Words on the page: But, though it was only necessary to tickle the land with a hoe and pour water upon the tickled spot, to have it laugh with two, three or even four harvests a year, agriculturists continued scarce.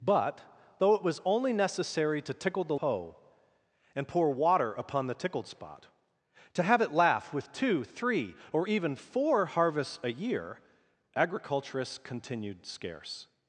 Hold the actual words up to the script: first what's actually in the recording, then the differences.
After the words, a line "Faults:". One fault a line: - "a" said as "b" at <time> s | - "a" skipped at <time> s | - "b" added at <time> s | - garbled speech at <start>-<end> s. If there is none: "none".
But, though it was only necessary to tickle the hoe and pour water upon the tickled spot, to have it laugh with two, three or even four harvests a year, agriculturists continued scarce.
Faults:
- "land with a" skipped at 2.8 s